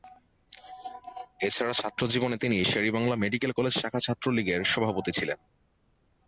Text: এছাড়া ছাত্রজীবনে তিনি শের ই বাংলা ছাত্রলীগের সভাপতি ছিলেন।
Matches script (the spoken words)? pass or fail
fail